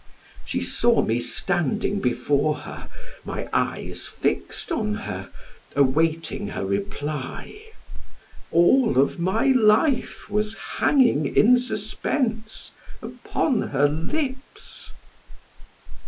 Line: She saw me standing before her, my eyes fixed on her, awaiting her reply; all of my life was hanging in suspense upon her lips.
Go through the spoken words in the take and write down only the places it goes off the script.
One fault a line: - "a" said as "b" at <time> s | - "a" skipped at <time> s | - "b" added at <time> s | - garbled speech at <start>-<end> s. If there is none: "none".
none